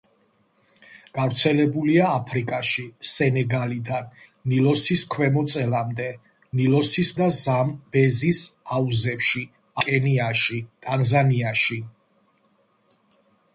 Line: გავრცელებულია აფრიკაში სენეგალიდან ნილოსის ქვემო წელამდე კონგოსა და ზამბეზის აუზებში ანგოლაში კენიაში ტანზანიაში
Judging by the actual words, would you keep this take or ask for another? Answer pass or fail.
fail